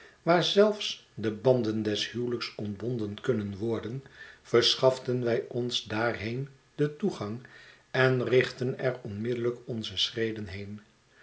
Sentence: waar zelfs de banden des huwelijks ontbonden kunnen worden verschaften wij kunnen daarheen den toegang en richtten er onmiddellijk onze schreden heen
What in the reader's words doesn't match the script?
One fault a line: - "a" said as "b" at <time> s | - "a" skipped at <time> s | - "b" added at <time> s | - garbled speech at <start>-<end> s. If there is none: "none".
- "kunnen" said as "ons" at 5.5 s